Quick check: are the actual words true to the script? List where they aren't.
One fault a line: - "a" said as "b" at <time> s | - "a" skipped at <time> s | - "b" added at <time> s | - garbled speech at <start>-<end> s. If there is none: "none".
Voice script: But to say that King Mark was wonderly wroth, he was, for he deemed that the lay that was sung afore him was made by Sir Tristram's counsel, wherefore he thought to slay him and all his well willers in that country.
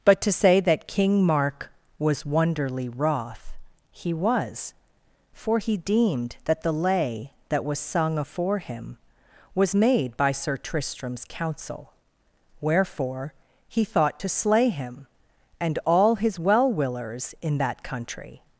none